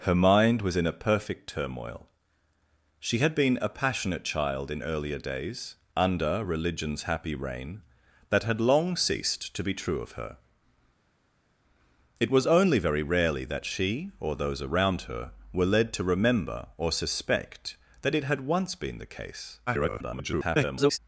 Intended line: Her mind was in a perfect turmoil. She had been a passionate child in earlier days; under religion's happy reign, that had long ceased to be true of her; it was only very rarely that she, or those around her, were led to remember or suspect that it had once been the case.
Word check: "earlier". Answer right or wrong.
right